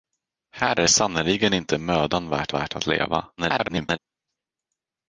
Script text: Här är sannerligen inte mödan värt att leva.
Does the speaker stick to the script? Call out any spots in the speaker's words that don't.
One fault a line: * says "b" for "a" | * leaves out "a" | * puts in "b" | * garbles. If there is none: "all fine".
* puts in "värt"
* garbles